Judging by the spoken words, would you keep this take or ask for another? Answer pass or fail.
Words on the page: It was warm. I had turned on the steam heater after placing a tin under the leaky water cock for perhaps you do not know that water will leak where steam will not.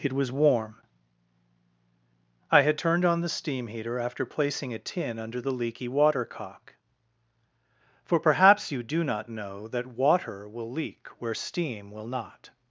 pass